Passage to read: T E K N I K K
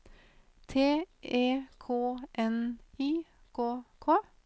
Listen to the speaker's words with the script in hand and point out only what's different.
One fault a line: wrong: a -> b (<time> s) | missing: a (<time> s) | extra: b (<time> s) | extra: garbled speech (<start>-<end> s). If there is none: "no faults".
no faults